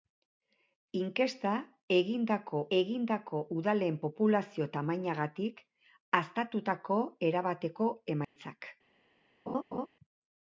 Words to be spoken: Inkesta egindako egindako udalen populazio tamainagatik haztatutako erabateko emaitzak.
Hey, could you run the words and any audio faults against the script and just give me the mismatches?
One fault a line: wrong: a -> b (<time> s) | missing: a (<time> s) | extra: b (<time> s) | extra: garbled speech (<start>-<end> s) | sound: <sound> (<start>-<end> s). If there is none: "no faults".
sound: dropout (8.2-8.4 s)
sound: laugh (9.5-9.9 s)